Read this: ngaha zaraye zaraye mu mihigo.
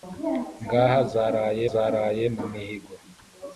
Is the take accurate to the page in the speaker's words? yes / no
yes